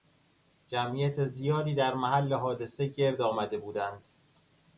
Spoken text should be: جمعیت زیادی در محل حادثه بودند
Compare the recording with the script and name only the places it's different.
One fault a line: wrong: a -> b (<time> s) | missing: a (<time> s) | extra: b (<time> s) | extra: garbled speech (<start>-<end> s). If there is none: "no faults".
extra: گرد آمده (2.9 s)